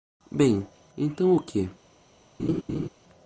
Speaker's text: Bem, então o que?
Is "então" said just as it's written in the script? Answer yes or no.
yes